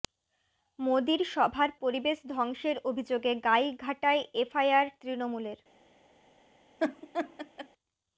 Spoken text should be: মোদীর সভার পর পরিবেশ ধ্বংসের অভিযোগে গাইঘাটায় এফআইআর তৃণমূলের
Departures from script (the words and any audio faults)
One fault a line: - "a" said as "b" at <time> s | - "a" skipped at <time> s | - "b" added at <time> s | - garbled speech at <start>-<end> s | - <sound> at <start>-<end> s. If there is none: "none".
- "পর" skipped at 1.7 s
- laugh at 6.8-7.7 s